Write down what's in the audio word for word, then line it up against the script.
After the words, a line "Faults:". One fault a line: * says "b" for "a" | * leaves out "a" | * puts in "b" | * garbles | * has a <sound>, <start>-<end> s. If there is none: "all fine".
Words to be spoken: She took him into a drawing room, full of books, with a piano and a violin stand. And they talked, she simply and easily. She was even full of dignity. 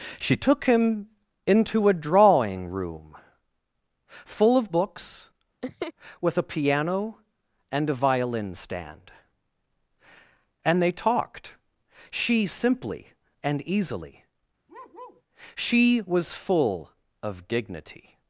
She took him into a drawing room, full of books, with a piano and a violin stand. And they talked, she simply and easily. She was full of dignity.
Faults:
* has a laugh, 5.6-5.9 s
* has a bark, 14.7-15.2 s
* leaves out "even"